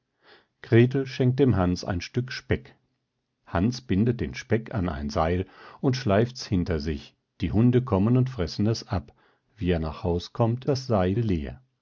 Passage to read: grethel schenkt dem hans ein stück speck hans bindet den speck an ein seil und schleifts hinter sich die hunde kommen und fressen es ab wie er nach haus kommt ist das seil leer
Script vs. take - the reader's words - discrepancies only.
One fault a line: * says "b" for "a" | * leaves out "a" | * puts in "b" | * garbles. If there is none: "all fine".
* leaves out "ist"